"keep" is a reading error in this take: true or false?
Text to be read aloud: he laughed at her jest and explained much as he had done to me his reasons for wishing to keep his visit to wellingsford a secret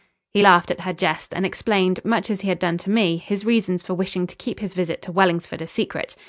false